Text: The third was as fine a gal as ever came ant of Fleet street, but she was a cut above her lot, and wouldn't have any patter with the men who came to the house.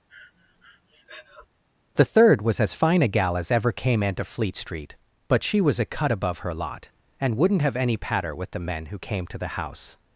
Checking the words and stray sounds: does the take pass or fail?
fail